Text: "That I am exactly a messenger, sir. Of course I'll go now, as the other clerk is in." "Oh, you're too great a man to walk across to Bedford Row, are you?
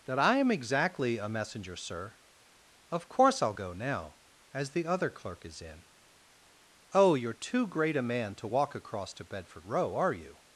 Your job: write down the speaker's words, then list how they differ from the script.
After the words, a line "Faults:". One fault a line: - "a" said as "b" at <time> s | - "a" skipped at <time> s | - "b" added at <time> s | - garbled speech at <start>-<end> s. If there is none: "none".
"That I am exactly a messenger, sir. Of course I'll go now, as the other clerk is in." "Oh, you're too great a man to walk across to Bedford Row, are you?
Faults:
none